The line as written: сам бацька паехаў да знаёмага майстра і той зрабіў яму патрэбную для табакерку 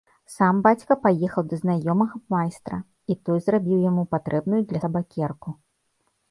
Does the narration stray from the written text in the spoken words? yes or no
no